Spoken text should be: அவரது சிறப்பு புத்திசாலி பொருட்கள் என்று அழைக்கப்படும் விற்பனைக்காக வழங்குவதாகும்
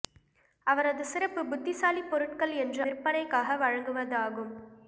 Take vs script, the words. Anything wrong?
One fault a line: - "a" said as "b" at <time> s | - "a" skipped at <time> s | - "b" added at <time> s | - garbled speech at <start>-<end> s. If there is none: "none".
- "அழைக்கப்படும்" skipped at 2.8 s